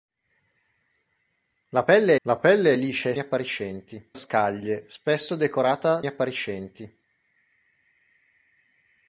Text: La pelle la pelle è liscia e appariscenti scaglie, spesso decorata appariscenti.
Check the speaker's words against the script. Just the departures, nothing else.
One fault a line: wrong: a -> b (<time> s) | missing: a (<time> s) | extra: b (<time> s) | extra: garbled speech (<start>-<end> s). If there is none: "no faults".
no faults